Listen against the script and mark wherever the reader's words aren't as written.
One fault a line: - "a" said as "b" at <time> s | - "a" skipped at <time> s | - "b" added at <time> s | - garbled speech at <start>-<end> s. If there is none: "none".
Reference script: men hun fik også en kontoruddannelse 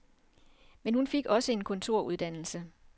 none